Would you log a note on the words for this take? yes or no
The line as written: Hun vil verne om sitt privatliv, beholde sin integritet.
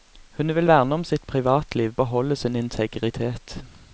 no